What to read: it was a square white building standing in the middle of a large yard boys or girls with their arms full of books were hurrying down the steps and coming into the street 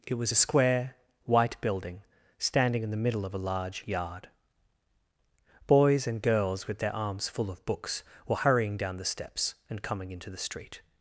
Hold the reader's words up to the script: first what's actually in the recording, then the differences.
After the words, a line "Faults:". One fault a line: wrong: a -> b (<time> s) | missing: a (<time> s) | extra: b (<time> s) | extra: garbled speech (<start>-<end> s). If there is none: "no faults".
it was a square white building standing in the middle of a large yard boys and girls with their arms full of books were hurrying down the steps and coming into the street
Faults:
wrong: or -> and (6.1 s)